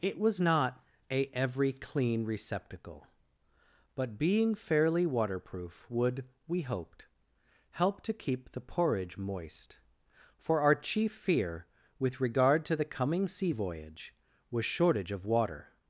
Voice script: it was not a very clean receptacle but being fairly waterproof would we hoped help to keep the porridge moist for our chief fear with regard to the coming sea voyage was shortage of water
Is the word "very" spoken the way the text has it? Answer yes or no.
no